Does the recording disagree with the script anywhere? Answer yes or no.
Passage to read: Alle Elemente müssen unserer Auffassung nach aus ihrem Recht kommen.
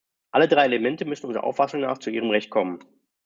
yes